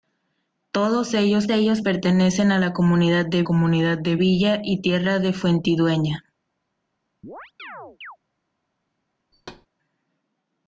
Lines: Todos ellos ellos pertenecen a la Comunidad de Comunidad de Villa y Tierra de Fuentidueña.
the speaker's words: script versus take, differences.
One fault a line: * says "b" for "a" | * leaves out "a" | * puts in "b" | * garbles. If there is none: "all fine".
all fine